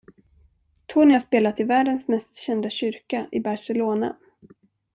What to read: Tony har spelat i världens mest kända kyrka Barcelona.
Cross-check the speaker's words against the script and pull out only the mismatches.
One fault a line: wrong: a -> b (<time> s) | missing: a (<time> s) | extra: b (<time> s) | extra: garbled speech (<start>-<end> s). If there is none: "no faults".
extra: i (3.3 s)